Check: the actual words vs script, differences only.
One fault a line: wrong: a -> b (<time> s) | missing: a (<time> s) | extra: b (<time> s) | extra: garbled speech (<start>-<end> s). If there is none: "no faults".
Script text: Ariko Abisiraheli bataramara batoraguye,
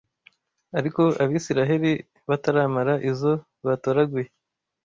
extra: izo (3.1 s)